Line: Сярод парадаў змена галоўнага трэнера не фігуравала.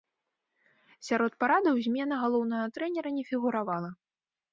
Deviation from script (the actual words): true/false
false